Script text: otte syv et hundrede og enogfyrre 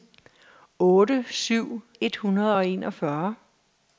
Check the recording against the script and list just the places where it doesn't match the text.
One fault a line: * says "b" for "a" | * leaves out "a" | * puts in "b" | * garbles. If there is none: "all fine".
all fine